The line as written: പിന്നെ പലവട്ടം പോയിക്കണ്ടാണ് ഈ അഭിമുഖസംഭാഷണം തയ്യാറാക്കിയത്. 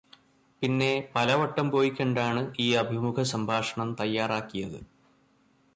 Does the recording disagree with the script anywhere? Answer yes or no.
no